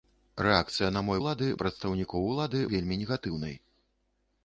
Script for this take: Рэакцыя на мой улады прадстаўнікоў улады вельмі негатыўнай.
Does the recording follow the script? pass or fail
pass